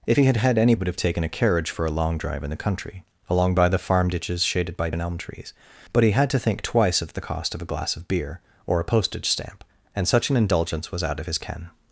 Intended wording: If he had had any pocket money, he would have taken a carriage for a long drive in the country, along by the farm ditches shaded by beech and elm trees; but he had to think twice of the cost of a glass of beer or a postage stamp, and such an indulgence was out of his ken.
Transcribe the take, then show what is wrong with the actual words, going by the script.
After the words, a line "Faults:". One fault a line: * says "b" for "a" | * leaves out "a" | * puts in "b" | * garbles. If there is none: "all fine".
If he had had any would have taken a carriage for a long drive in the country, along by the farm ditches shaded by and elm trees; but he had to think twice of the cost of a glass of beer or a postage stamp, and such an indulgence was out of his ken.
Faults:
* leaves out "pocket money he"
* leaves out "beech"